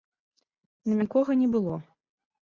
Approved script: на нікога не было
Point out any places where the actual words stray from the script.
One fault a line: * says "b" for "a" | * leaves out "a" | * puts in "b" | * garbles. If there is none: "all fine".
all fine